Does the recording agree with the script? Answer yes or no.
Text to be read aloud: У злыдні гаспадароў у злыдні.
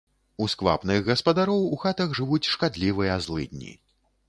no